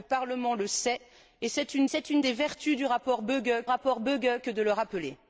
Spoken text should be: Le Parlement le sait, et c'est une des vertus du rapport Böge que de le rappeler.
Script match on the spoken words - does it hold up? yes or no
no